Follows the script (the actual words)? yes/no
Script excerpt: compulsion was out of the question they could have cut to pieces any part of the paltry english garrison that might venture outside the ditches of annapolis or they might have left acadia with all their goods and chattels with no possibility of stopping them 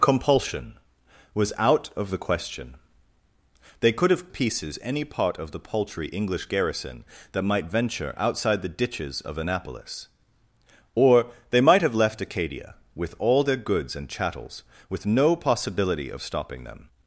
no